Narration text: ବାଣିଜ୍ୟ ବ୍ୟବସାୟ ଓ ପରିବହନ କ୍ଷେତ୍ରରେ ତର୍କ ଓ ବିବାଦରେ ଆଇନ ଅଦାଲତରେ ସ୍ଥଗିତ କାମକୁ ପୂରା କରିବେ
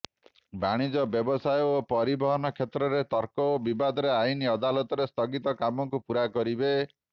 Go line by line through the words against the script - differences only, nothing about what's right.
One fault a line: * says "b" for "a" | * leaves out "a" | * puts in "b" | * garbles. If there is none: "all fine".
all fine